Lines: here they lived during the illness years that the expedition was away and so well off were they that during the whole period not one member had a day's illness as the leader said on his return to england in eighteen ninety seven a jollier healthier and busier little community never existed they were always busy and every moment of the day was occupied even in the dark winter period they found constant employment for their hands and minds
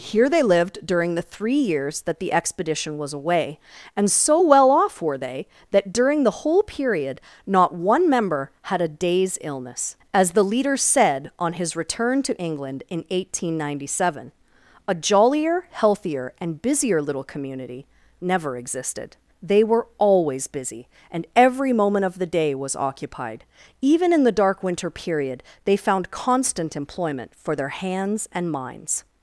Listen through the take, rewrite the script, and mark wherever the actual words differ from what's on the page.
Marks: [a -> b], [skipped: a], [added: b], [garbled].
here they lived during the [illness -> three] years that the expedition was away and so well off were they that during the whole period not one member had a day's illness as the leader said on his return to england in eighteen ninety seven a jollier healthier and busier little community never existed they were always busy and every moment of the day was occupied even in the dark winter period they found constant employment for their hands and minds